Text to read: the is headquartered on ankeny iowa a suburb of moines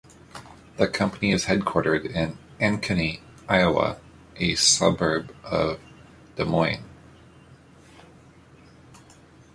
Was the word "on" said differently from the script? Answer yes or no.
yes